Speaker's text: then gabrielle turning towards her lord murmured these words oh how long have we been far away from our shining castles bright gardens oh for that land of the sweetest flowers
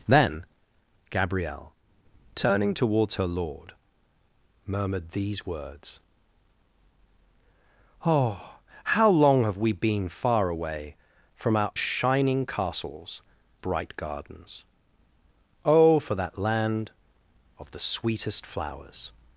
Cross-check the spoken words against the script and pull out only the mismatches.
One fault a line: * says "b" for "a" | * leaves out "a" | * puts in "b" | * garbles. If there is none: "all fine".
all fine